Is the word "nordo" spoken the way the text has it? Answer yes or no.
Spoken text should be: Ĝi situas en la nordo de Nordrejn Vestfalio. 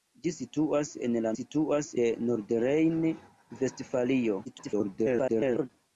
no